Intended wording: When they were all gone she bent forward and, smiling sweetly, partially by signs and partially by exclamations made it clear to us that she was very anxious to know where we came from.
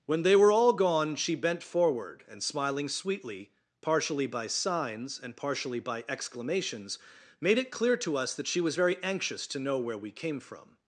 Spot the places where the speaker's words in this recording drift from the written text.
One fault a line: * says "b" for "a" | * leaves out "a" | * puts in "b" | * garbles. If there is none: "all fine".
all fine